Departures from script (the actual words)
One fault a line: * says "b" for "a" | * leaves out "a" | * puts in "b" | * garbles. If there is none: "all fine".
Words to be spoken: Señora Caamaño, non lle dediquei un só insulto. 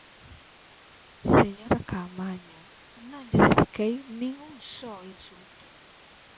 * puts in "nin"